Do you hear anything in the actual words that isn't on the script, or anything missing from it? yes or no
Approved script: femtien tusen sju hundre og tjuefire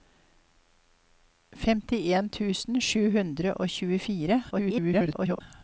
yes